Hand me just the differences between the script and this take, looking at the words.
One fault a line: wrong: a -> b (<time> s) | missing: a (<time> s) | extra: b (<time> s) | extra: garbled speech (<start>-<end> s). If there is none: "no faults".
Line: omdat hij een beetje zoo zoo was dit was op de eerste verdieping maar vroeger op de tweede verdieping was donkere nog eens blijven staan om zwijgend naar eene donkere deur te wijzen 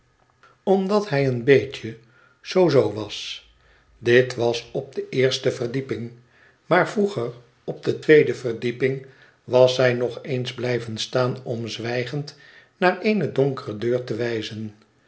wrong: donkere -> zij (9.8 s)